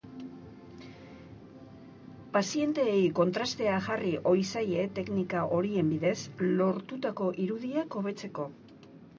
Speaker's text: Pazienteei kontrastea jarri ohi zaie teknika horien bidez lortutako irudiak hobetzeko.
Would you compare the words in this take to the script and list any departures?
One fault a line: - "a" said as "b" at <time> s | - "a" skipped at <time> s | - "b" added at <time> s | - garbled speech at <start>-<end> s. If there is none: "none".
none